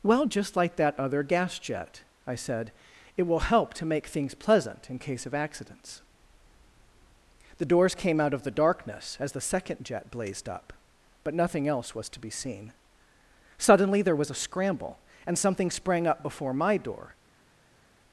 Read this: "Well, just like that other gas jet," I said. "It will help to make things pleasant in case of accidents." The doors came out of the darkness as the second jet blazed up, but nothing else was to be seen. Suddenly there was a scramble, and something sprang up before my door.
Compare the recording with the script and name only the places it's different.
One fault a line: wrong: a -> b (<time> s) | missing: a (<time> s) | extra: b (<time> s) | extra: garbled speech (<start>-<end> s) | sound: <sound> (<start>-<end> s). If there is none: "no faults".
no faults